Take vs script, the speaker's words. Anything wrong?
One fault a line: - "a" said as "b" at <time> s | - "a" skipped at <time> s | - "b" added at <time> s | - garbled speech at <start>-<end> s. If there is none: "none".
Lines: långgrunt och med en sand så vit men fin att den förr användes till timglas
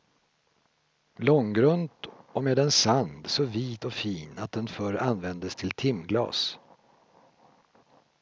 - "men" said as "och" at 3.8 s